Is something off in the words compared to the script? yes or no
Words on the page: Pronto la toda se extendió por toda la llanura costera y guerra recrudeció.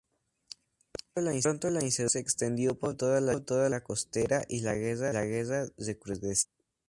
yes